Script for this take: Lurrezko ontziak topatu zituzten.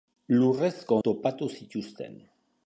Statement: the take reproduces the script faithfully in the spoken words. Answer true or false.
false